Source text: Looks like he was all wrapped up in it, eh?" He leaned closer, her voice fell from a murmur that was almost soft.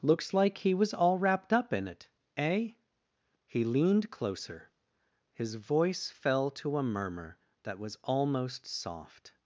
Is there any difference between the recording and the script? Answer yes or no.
yes